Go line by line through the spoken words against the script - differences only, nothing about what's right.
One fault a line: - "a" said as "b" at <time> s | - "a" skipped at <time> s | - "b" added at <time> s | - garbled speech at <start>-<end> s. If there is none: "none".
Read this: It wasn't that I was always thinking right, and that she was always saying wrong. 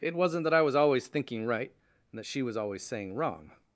none